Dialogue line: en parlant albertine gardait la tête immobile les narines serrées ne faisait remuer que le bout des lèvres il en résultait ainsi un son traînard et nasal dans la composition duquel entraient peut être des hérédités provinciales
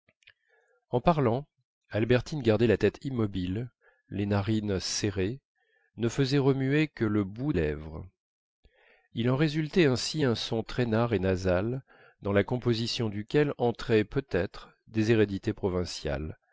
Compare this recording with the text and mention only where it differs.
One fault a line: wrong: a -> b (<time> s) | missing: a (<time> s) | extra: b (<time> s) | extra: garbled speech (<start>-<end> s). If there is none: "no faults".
missing: des (7.5 s)